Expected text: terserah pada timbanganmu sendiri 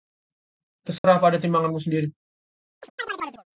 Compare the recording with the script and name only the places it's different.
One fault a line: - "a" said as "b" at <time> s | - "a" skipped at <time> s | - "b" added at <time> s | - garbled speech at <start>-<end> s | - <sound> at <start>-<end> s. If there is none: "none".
- dropout at 1.0-1.0 s
- chirp at 2.8-3.4 s